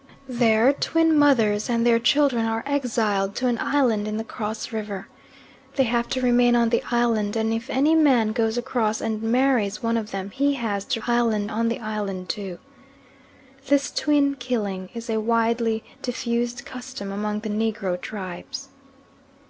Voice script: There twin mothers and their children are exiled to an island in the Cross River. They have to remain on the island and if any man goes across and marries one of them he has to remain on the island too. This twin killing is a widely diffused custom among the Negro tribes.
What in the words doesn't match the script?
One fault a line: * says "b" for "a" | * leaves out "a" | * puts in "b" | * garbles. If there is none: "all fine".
* says "island" for "remain"